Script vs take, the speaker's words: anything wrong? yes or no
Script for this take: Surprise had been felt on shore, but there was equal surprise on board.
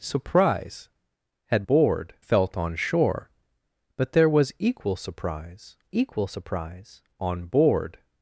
yes